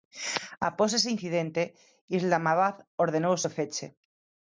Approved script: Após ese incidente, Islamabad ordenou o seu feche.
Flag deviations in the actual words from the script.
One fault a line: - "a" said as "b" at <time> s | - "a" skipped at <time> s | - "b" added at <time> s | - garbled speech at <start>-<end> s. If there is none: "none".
none